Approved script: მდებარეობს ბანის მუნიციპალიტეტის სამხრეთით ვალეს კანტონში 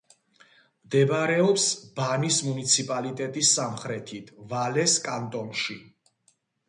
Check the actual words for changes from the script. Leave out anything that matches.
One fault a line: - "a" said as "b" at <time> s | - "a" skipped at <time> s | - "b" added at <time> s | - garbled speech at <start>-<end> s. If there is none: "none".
none